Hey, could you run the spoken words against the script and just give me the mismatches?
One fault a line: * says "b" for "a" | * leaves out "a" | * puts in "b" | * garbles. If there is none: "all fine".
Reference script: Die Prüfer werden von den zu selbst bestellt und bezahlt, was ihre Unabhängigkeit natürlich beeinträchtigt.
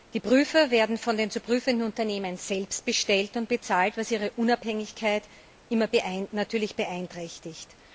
* puts in "prüfenden Unternehmen"